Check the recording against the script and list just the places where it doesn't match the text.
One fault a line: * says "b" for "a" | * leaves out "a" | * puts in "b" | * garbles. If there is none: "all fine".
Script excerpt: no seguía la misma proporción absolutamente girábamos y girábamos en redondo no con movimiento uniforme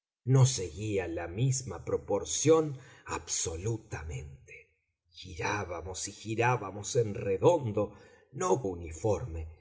* leaves out "con movimiento"